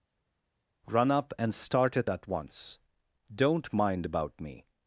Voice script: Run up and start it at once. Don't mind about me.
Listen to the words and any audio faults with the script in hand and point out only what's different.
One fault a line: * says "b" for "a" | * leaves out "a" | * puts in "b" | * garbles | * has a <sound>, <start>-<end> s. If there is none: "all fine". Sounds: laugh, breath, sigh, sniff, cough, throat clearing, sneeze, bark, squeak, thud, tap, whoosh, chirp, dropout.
all fine